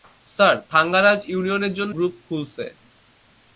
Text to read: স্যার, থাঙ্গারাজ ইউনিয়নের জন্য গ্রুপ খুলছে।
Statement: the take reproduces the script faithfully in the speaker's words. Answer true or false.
true